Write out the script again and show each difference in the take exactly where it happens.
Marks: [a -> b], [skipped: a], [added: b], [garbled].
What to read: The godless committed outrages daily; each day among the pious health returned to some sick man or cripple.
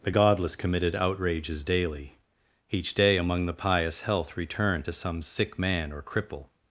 The godless committed outrages daily; each day among the pious health returned to some sick man or cripple.